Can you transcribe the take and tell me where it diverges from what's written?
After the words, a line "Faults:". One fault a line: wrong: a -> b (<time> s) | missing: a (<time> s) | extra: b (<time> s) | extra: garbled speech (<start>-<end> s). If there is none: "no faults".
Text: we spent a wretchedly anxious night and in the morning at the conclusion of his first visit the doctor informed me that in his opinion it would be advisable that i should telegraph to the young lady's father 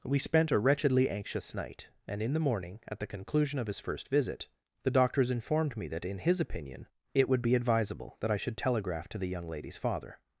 we spent a wretchedly anxious night and in the morning at the conclusion of his first visit the doctors informed me that in his opinion it would be advisable that i should telegraph to the young lady's father
Faults:
wrong: doctor -> doctors (4.9 s)